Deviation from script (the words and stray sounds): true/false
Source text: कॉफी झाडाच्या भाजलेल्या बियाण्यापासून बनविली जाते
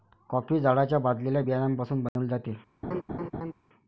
true